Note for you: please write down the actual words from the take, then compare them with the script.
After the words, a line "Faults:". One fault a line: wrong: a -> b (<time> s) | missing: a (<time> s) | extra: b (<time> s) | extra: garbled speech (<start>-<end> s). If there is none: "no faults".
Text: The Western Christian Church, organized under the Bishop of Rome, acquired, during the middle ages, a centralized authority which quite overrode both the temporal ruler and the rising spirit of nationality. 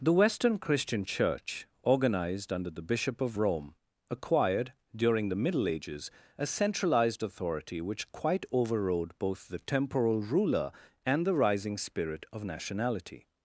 The Western Christian Church, organized under the Bishop of Rome, acquired, during the middle ages, a centralized authority which quite overrode both the temporal ruler and the rising spirit of nationality.
Faults:
no faults